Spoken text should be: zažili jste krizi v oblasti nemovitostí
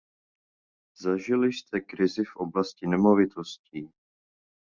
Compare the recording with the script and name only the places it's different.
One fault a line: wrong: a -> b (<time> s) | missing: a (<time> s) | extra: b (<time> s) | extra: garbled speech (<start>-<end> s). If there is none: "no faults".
no faults